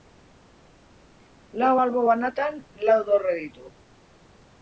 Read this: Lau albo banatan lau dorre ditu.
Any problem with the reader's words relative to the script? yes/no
no